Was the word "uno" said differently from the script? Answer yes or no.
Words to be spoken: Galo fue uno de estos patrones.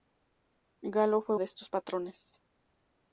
yes